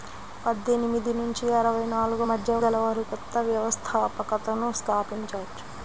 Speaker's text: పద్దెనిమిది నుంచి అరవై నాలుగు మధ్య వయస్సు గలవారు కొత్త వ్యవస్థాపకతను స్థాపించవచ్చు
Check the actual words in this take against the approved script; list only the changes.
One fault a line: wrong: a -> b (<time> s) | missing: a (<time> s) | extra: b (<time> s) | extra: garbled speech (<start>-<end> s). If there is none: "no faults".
missing: వయస్సు (2.5 s)